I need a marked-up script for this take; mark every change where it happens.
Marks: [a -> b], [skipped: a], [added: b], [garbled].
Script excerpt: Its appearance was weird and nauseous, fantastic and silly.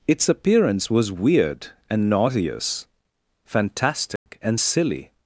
Its appearance was weird and nauseous, fantastic and silly.